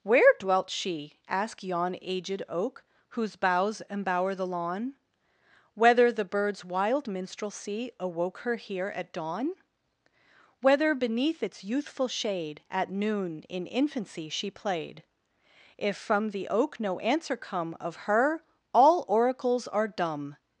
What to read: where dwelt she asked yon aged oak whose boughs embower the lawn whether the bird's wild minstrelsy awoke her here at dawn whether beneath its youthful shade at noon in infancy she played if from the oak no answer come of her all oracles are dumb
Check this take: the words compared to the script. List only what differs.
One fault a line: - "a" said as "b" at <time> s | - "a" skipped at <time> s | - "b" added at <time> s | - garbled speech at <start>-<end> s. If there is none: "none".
none